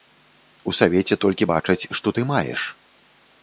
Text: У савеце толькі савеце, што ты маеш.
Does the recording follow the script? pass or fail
fail